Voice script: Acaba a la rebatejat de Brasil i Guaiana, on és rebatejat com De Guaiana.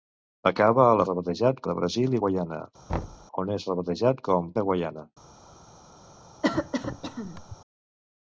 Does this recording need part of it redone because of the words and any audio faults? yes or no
yes